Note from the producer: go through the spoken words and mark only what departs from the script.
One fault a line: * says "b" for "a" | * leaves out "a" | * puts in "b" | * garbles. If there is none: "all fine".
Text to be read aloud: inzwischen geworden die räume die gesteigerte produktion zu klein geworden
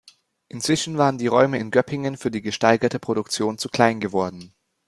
* says "waren" for "geworden"
* puts in "in göppingen für"